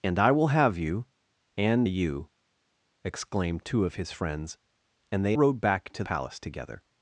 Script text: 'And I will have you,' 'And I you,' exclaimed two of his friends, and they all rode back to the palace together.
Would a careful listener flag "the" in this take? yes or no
yes